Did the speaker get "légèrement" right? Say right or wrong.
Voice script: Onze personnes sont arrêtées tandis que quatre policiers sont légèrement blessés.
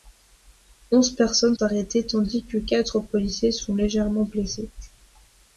right